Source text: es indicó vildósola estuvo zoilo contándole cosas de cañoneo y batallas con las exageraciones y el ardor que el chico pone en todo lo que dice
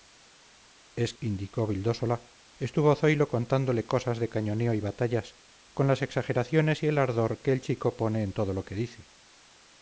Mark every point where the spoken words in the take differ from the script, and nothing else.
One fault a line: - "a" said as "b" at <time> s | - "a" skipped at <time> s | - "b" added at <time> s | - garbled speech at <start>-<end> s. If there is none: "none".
none